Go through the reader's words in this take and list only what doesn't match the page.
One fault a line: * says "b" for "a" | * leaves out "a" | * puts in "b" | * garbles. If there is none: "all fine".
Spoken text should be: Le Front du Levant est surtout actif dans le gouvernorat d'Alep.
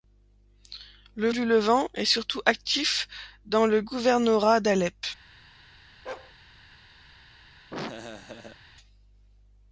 * leaves out "Front"